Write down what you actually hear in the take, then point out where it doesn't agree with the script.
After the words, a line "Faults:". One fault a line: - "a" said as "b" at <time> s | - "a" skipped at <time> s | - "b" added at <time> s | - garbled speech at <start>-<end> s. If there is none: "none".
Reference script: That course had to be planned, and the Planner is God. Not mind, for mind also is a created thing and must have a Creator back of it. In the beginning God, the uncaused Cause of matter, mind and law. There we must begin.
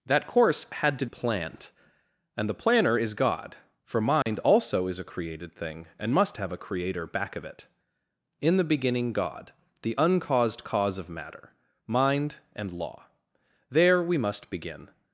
That course had to planned, and the Planner is God. For mind also is a created thing and must have a Creator back of it. In the beginning God, the uncaused Cause of matter, mind and law. There we must begin.
Faults:
- "be" skipped at 1.1 s
- "Not mind" skipped at 3.6 s